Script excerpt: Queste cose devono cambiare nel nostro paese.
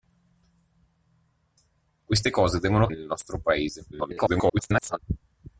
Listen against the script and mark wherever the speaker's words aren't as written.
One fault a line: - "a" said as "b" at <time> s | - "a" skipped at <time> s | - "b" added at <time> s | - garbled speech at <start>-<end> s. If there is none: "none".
- "cambiare" skipped at 2.9 s
- garbled speech at 3.9-5.0 s